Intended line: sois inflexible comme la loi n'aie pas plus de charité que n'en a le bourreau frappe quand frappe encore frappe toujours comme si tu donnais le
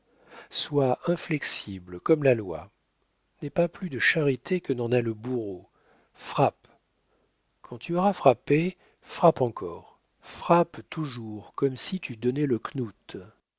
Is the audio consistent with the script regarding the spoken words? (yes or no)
no